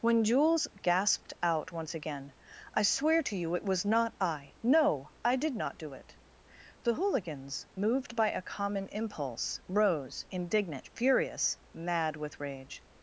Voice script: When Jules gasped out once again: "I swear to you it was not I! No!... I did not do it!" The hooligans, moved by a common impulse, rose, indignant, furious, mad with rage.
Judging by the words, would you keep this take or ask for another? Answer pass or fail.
pass